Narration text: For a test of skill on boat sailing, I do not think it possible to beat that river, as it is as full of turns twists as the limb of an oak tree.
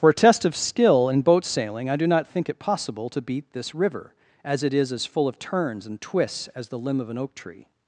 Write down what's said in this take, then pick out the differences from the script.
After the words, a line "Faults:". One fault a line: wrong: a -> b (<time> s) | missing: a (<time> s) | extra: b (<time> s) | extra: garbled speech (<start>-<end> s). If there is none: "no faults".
For a test of skill in boat sailing, I do not think it possible to beat this river, as it is as full of turns and twists as the limb of an oak tree.
Faults:
wrong: on -> in (1.1 s)
wrong: that -> this (3.5 s)
extra: and (5.9 s)